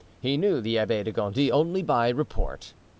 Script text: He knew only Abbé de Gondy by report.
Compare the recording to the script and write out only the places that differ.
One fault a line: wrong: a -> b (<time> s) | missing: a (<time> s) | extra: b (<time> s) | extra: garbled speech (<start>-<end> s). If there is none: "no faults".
wrong: only -> the (0.6 s)
extra: only (1.5 s)